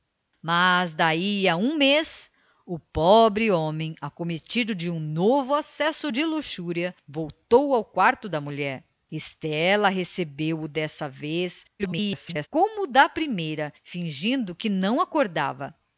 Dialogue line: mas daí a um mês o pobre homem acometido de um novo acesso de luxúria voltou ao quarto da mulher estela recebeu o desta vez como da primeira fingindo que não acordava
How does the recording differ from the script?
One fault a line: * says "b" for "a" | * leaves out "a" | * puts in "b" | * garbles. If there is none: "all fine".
* garbles